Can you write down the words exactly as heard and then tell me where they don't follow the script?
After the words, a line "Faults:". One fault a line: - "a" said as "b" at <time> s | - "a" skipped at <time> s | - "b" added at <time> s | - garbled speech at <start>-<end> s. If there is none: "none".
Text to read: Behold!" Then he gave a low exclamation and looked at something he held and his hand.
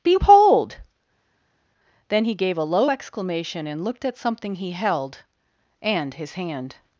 Behold!" Then he gave a low exclamation and looked at something he held and his hand.
Faults:
none